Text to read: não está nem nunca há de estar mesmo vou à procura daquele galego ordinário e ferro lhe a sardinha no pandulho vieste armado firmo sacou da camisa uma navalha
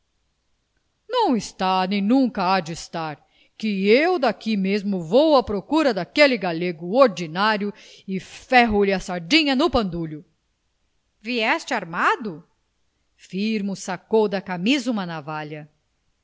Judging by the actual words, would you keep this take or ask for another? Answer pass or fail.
fail